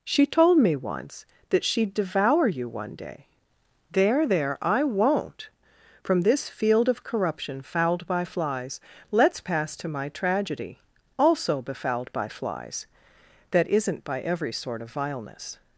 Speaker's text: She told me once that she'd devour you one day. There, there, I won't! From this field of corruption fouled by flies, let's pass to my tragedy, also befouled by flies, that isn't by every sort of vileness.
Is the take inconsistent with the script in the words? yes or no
no